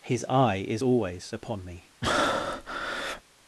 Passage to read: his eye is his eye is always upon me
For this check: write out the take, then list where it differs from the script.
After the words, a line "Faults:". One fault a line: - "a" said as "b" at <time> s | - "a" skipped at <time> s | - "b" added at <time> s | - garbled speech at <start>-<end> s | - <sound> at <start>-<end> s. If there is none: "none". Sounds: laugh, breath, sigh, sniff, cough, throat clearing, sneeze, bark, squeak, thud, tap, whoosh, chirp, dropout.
his eye is always upon me
Faults:
- "his eye is" skipped at 0.8 s
- breath at 2.0-3.2 s